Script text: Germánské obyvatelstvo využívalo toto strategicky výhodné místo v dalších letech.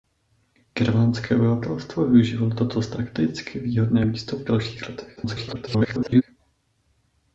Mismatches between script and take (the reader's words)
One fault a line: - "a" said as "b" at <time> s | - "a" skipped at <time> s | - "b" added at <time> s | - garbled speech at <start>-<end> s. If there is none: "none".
- garbled speech at 5.2-6.2 s